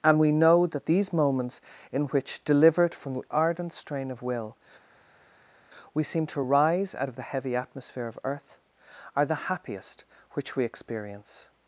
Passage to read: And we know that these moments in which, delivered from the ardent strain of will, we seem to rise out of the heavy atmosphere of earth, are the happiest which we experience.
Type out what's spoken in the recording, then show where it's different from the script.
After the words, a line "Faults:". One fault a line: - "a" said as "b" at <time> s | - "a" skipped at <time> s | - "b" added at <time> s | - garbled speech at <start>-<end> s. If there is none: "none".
And we know that these moments in which, delivered from the ardent strain of will, we seem to rise out of the heavy atmosphere of earth, are the happiest which we experience.
Faults:
none